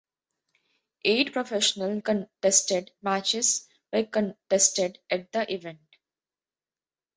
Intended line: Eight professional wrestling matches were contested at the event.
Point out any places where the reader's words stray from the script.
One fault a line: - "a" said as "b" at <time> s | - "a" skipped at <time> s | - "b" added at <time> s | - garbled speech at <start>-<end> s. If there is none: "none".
- "wrestling" said as "contested" at 2.0 s